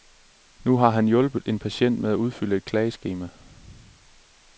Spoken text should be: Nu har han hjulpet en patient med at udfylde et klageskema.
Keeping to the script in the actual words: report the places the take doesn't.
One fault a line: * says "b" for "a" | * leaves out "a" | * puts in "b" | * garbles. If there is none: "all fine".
all fine